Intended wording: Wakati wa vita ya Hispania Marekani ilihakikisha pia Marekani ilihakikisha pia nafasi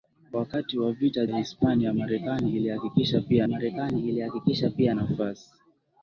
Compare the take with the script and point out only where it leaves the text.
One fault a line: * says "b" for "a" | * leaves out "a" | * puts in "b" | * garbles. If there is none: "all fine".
all fine